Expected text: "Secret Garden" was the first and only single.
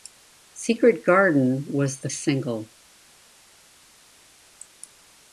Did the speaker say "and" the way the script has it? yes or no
no